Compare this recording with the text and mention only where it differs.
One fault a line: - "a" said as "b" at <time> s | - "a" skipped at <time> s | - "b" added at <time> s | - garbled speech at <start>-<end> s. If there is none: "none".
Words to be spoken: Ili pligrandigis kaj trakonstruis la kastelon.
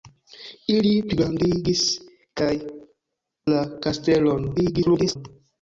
- "trakonstruis" skipped at 2.5 s
- garbled speech at 4.6-5.2 s